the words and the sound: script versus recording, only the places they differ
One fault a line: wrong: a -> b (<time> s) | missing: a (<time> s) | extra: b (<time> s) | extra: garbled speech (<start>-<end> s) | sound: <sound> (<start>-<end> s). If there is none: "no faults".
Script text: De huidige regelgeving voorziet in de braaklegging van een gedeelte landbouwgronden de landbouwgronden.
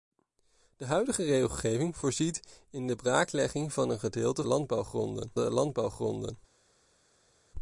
no faults